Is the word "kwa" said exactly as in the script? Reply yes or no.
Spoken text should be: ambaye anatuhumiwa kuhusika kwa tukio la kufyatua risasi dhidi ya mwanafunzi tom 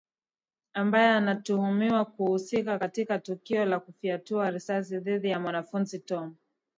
no